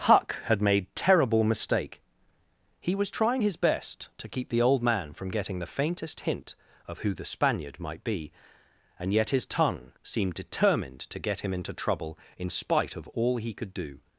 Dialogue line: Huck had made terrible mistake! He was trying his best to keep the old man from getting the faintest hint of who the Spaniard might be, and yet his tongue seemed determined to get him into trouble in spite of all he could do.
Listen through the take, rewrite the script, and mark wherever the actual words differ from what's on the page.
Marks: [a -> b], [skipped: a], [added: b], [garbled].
Huck had made terrible mistake! He was trying his best to keep the old man from getting the faintest hint of who the Spaniard might be, and yet his tongue seemed determined to get him into trouble in spite of all he could do.